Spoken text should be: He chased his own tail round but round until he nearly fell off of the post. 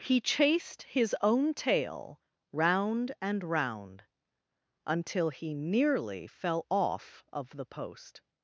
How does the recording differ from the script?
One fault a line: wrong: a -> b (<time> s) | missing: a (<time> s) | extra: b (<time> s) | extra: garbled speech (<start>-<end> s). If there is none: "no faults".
wrong: but -> and (3.2 s)